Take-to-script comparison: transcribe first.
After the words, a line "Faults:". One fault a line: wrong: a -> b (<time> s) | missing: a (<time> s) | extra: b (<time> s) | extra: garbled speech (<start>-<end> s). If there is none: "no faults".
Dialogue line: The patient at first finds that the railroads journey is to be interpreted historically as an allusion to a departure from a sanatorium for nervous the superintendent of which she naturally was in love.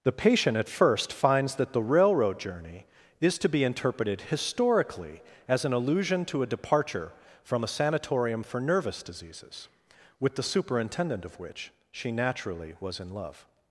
The patient at first finds that the railroad journey is to be interpreted historically as an allusion to a departure from a sanatorium for nervous diseases, with the superintendent of which she naturally was in love.
Faults:
wrong: railroads -> railroad (1.8 s)
extra: diseases with (9.0 s)